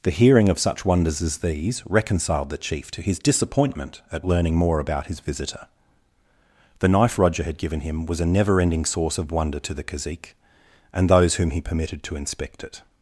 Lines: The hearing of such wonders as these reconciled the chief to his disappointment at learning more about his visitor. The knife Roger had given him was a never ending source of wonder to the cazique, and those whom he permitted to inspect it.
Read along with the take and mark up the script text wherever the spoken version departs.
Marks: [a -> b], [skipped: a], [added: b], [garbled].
The hearing of such wonders as these reconciled the chief to his disappointment at learning more about his visitor. The knife Roger had given him was a never ending source of wonder to the cazique, and those whom he permitted to inspect it.